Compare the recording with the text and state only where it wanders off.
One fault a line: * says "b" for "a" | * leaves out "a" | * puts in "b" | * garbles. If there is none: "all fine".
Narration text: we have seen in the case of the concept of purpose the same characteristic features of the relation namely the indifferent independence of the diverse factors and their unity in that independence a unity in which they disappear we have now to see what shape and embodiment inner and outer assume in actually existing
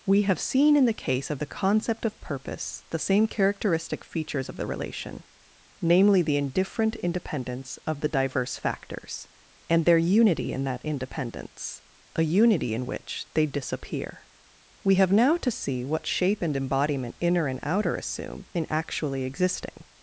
all fine